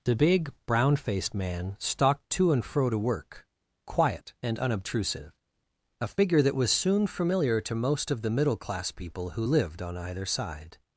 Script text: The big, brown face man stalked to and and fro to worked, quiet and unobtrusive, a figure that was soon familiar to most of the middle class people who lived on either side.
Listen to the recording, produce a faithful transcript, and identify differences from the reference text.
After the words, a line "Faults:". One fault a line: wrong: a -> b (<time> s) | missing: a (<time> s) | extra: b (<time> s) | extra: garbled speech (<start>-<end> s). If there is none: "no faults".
The big, brown faced man stalked to and fro to work, quiet and unobtrusive, a figure that was soon familiar to most of the middle class people who lived on either side.
Faults:
wrong: face -> faced (0.9 s)
missing: and (2.6 s)
wrong: worked -> work (3.0 s)